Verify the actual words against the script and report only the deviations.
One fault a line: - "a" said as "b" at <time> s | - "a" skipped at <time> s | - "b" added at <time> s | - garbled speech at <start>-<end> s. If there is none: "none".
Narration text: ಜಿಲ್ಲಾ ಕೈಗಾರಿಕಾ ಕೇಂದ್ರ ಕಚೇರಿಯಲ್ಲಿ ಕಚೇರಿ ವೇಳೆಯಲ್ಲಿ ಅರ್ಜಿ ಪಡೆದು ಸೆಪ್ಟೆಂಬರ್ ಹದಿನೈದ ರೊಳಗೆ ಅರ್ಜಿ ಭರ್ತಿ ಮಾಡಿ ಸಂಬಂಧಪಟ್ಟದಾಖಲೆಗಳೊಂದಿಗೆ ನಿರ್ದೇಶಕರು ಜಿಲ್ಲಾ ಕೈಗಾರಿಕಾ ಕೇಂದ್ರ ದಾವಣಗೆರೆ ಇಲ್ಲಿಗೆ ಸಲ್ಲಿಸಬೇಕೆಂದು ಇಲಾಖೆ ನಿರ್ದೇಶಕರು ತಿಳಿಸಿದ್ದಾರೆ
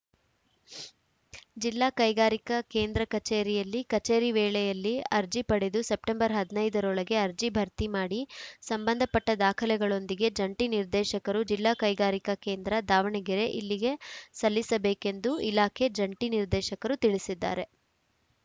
- "ಜಂಟಿ" added at 10.4 s
- "ಜಂಟಿ" added at 16.0 s